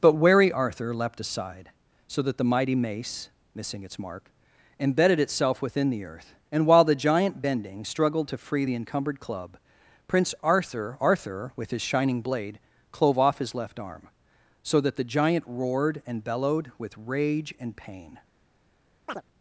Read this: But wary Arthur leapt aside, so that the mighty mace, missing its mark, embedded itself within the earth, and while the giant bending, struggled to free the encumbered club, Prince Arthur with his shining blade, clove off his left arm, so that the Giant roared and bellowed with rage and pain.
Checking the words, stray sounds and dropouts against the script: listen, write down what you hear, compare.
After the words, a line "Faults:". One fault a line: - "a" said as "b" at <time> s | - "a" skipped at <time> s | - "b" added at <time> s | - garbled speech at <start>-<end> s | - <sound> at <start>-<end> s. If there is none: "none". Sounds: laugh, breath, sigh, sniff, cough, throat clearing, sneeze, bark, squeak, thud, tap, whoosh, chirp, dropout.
But wary Arthur leapt aside, so that the mighty mace, missing its mark, embedded itself within the earth, and while the giant bending, struggled to free the encumbered club, Prince Arthur arthur with his shining blade, clove off his left arm, so that the Giant roared and bellowed with rage and pain.
Faults:
- "arthur" added at 11.0 s
- chirp at 19.1-19.2 s